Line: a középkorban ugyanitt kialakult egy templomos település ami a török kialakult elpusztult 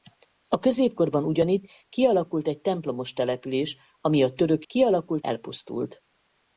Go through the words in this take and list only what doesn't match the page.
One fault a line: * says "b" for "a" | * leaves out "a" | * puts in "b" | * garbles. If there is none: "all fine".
all fine